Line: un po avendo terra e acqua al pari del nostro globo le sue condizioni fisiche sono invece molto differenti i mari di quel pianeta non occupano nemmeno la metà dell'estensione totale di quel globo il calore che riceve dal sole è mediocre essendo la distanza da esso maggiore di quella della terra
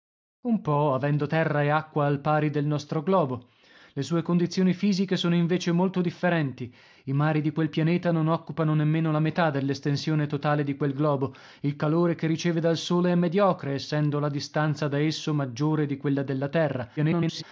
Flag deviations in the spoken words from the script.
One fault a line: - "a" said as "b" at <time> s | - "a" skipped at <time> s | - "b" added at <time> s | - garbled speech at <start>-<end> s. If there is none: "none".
- garbled speech at 17.0-17.4 s